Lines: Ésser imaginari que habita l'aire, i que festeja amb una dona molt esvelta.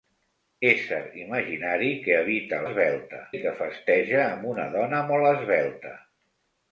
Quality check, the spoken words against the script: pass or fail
fail